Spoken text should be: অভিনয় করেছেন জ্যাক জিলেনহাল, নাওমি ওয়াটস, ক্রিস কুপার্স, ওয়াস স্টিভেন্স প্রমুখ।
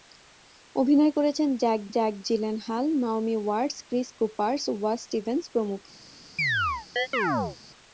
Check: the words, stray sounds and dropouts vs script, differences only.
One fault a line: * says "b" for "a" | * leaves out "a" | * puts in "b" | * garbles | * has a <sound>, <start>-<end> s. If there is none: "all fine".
* puts in "জ্যাক"
* has a chirp, 6.4-7.6 s